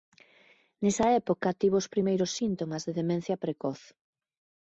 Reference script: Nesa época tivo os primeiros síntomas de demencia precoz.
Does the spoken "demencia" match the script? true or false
true